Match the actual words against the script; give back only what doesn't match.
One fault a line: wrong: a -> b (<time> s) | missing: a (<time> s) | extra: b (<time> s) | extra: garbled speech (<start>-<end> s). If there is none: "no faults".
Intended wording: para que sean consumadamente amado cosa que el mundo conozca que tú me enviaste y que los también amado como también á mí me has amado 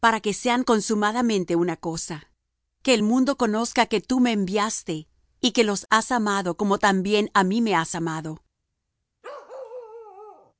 wrong: amado -> una (1.6 s)
wrong: también -> has (5.9 s)